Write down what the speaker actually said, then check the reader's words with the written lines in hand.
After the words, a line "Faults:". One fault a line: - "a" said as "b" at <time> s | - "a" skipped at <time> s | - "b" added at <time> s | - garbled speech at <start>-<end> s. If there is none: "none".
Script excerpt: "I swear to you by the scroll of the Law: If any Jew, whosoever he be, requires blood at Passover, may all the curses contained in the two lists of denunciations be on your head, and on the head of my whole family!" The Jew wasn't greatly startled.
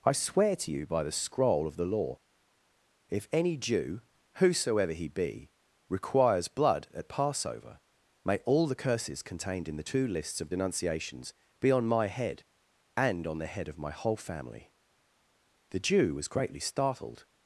"I swear to you by the scroll of the Law: If any Jew, whosoever he be, requires blood at Passover, may all the curses contained in the two lists of denunciations be on my head, and on the head of my whole family!" The Jew was greatly startled.
Faults:
- "your" said as "my" at 11.9 s
- "wasn't" said as "was" at 16.1 s